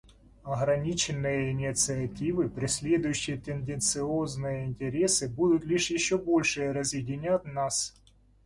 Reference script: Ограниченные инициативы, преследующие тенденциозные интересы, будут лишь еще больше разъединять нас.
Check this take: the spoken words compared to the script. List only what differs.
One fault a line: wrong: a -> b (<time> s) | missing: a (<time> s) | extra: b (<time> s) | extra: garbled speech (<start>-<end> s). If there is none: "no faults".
no faults